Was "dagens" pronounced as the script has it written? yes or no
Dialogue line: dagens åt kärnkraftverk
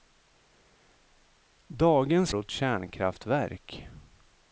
yes